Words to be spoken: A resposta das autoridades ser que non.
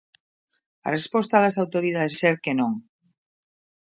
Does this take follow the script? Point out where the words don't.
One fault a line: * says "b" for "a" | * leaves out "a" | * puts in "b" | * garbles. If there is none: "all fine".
all fine